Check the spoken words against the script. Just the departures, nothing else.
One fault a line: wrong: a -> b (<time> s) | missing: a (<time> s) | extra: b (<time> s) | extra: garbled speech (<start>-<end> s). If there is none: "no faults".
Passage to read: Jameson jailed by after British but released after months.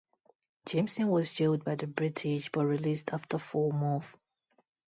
extra: was (1.1 s)
wrong: after -> the (1.7 s)
extra: four (3.4 s)